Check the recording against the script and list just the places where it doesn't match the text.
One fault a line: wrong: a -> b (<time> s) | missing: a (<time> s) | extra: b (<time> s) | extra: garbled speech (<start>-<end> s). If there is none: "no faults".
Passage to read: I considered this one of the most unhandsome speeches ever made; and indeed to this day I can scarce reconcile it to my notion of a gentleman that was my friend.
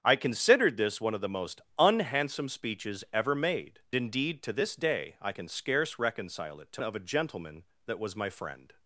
missing: and (3.8 s)
missing: my notion (6.8 s)